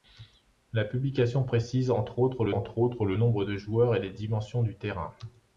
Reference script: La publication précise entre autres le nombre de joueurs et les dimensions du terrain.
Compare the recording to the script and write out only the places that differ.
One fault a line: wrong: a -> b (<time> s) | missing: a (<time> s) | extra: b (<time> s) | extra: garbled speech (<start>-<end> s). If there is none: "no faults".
extra: entre autres le (2.5 s)